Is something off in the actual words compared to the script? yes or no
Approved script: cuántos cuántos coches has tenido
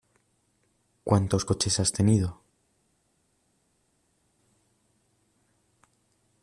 yes